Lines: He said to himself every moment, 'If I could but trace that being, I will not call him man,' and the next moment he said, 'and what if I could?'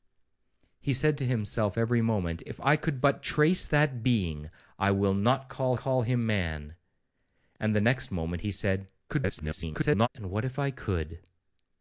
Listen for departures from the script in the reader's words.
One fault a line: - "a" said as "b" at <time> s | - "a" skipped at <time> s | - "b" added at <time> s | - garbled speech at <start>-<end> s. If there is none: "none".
- "call" added at 5.7 s
- garbled speech at 9.1-10.1 s